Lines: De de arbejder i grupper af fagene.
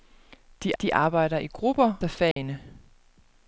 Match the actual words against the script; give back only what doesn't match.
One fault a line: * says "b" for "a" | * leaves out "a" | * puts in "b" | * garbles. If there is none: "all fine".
all fine